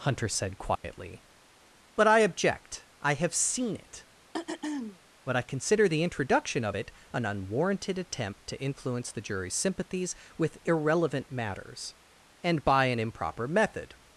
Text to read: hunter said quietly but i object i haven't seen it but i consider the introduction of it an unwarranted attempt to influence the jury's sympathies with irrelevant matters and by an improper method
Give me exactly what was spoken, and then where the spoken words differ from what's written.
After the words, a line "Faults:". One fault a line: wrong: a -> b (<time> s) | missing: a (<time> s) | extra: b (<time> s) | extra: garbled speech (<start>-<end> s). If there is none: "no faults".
hunter said quietly but i object i have seen it but i consider the introduction of it an unwarranted attempt to influence the jury's sympathies with irrelevant matters and by an improper method
Faults:
wrong: haven't -> have (3.1 s)